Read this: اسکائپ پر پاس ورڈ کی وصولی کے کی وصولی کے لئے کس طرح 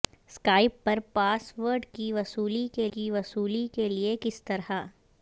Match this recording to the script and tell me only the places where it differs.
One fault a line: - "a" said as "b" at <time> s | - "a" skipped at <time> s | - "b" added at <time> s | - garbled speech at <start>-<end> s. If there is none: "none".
none